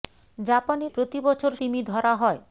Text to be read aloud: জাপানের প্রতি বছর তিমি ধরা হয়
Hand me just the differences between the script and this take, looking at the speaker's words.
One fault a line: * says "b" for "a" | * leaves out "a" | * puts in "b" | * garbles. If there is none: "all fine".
all fine